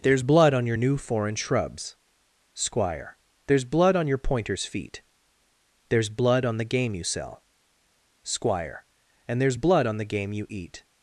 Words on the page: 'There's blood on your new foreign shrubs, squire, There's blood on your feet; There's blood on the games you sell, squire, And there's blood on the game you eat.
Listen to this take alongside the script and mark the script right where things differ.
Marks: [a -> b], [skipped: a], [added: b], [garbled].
'There's blood on your new foreign shrubs, squire, There's blood on your [added: pointer's] feet; There's blood on the [games -> game] you sell, squire, And there's blood on the game you eat.